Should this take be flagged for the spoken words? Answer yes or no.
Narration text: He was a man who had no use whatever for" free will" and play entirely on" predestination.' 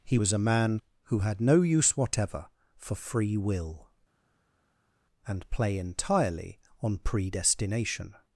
no